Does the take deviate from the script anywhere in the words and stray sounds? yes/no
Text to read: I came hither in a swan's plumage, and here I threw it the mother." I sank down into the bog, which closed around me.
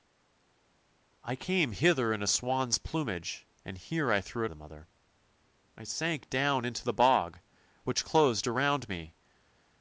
no